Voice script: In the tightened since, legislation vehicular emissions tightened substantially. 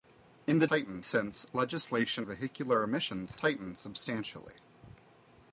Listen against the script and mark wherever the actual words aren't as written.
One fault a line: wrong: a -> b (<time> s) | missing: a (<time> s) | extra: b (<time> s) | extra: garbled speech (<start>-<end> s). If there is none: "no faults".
no faults